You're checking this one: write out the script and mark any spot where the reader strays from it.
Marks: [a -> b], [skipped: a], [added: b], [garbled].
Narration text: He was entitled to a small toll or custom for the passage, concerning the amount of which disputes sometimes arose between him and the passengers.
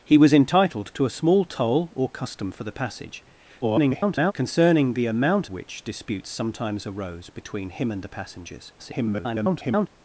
He was entitled to a small toll or custom for the passage, [garbled] concerning the amount [skipped: of] which disputes sometimes arose between him and the passengers. [garbled]